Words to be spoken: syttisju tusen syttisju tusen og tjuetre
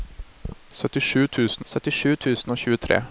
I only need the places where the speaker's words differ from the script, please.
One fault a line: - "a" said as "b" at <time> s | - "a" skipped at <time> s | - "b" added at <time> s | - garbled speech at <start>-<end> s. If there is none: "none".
none